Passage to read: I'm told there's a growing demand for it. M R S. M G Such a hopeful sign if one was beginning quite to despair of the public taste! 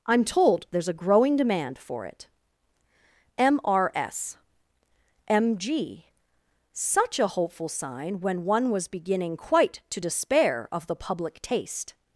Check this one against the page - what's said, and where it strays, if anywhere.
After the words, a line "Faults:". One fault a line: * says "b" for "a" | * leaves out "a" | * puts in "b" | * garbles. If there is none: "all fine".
I'm told there's a growing demand for it. M R S. M G Such a hopeful sign when one was beginning quite to despair of the public taste!
Faults:
* says "when" for "if"